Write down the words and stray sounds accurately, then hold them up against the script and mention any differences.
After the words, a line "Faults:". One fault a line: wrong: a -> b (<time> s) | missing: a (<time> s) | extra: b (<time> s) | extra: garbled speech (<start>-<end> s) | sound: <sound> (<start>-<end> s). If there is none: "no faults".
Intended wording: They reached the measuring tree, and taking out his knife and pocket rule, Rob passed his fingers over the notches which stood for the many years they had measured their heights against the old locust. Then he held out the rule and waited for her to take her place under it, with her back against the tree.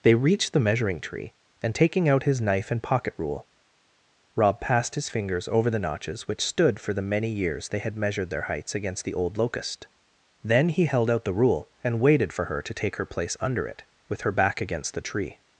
They reached the measuring tree, and taking out his knife and pocket rule, Rob passed his fingers over the notches which stood for the many years they had measured their heights against the old locust. Then he held out the rule and waited for her to take her place under it, with her back against the tree.
Faults:
no faults